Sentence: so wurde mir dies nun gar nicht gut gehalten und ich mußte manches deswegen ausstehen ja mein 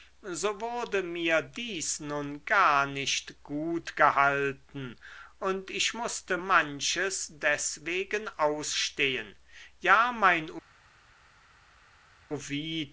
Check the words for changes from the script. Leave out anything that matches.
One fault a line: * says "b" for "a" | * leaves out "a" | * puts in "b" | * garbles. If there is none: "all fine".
all fine